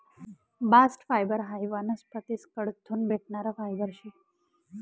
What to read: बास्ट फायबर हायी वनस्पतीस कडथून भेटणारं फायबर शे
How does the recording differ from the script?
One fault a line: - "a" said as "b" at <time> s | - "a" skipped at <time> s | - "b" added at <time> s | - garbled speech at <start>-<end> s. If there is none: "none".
none